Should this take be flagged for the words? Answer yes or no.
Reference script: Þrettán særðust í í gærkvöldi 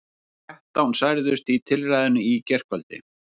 yes